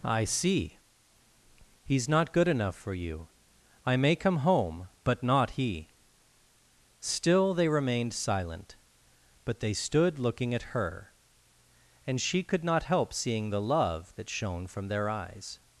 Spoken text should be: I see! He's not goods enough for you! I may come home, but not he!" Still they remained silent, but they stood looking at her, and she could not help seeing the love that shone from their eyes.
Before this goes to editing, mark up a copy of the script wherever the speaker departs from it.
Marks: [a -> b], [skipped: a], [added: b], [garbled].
I see! He's not [goods -> good] enough for you! I may come home, but not he!" Still they remained silent, but they stood looking at her, and she could not help seeing the love that shone from their eyes.